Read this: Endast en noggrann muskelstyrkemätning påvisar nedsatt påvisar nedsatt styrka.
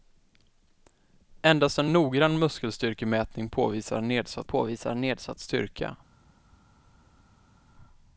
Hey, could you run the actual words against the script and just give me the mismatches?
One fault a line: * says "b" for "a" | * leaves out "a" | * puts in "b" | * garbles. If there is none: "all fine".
all fine